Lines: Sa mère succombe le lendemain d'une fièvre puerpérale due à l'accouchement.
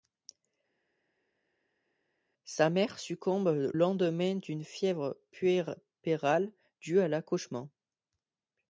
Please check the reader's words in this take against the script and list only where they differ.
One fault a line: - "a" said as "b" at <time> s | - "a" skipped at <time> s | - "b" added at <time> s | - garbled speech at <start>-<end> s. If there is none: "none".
- "le" skipped at 3.7 s